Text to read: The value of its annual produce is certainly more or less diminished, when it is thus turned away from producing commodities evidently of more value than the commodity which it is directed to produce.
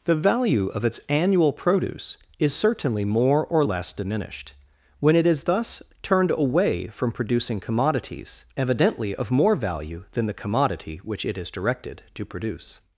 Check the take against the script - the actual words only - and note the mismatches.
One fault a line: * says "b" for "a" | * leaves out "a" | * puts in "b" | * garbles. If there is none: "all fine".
all fine